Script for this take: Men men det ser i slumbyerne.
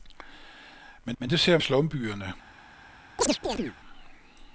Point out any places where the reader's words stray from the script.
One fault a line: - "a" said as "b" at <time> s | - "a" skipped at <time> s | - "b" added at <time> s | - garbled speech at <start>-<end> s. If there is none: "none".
none